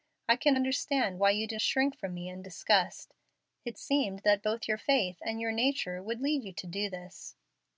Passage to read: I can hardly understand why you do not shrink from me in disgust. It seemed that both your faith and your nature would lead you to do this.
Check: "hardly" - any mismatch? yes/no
yes